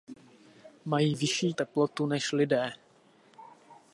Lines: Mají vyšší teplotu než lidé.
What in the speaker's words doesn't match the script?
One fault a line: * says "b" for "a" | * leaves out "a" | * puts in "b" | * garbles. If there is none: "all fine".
all fine